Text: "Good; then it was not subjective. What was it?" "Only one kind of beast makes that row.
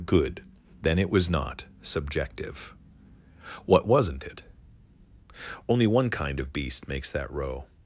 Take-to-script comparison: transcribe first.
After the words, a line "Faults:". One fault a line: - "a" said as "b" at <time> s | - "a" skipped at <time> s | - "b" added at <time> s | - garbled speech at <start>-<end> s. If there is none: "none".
"Good; then it was not subjective. What wasn't it?" "Only one kind of beast makes that row.
Faults:
- "was" said as "wasn't" at 3.9 s